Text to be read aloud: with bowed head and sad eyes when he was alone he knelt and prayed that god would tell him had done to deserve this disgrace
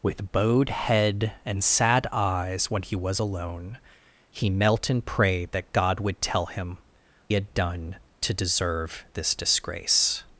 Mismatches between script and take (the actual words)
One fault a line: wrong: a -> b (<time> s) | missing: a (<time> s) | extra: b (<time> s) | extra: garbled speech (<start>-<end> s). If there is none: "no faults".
no faults